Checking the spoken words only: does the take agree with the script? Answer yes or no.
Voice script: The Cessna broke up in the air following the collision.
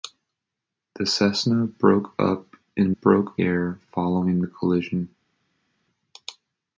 no